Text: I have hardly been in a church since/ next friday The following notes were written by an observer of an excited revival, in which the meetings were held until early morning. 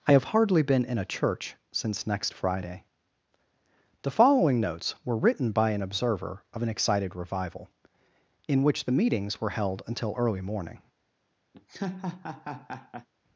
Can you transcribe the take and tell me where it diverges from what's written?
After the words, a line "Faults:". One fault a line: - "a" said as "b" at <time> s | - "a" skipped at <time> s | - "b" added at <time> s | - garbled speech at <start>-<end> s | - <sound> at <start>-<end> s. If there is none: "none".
I have hardly been in a church since/ next friday The following notes were written by an observer of an excited revival, in which the meetings were held until early morning.
Faults:
- laugh at 11.5-13.1 s